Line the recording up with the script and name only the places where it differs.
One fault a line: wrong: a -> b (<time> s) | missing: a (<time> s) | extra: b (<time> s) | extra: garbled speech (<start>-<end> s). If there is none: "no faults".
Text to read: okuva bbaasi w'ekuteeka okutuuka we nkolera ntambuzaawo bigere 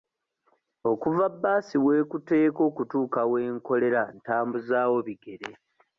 no faults